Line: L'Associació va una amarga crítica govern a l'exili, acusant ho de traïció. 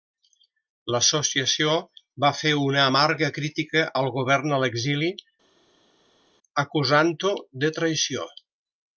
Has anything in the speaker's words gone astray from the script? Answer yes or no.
yes